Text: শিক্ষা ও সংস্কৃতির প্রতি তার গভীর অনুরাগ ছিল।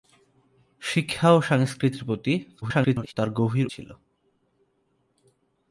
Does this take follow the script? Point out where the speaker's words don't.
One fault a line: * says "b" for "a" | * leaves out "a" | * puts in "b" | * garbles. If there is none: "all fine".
* garbles
* leaves out "অনুরাগ"